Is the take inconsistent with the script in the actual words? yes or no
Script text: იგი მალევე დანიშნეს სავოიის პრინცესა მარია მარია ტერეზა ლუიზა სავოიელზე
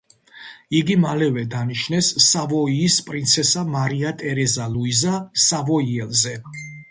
yes